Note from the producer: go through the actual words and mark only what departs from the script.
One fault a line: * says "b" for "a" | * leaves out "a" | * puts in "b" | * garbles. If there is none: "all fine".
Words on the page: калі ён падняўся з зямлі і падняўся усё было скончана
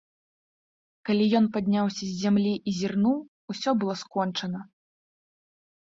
* says "зірнуў" for "падняўся"